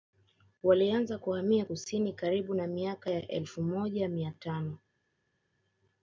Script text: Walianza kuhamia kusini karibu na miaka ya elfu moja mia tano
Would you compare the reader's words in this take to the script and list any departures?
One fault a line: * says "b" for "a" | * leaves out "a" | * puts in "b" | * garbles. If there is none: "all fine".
all fine